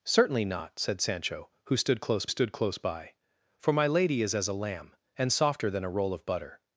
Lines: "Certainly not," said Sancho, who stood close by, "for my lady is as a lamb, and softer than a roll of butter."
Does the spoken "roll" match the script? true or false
true